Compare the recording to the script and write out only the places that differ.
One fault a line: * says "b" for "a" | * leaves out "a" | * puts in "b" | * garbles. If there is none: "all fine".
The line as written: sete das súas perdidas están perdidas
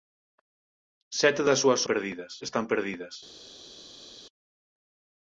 all fine